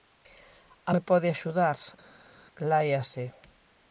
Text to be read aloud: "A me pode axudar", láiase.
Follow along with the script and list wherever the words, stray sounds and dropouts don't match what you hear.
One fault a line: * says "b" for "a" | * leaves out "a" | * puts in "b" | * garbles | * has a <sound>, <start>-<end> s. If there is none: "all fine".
all fine